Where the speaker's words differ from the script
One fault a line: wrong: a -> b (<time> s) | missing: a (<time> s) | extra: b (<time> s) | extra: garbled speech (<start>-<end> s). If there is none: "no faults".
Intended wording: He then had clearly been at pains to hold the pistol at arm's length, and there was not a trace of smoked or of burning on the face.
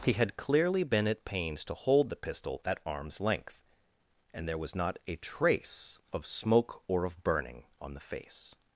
missing: then (0.1 s)
wrong: smoked -> smoke (6.2 s)